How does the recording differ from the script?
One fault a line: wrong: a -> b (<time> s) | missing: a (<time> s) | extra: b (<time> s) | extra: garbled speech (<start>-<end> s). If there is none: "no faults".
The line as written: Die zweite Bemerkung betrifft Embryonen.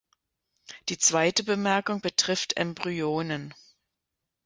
no faults